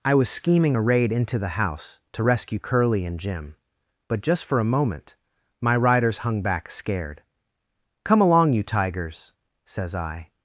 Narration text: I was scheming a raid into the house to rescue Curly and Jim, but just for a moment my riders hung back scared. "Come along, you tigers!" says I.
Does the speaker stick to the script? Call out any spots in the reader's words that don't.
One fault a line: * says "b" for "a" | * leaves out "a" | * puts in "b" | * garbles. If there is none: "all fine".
all fine